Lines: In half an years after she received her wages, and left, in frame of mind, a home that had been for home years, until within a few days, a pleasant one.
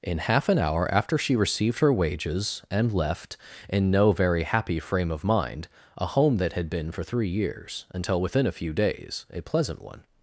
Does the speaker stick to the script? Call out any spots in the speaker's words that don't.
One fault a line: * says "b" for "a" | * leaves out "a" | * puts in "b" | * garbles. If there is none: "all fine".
* says "hour" for "years"
* puts in "no very happy"
* says "three" for "home"